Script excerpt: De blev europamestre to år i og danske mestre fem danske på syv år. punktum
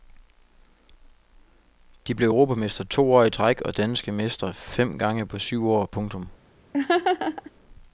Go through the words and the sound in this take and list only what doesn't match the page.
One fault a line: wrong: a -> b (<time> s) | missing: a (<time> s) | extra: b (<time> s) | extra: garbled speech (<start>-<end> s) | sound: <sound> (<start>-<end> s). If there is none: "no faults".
extra: træk (3.3 s)
wrong: danske -> gange (5.0 s)
sound: laugh (6.7-7.5 s)